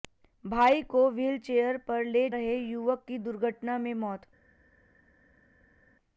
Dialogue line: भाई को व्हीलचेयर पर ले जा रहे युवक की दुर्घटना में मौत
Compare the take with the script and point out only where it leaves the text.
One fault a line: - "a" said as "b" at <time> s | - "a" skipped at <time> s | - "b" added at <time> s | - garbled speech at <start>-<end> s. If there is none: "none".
- "जा" skipped at 2.3 s